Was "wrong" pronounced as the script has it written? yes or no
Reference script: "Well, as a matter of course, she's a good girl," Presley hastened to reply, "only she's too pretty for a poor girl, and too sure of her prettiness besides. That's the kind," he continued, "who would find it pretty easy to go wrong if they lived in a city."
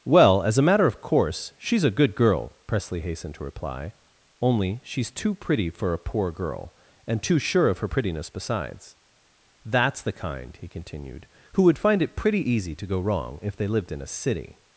yes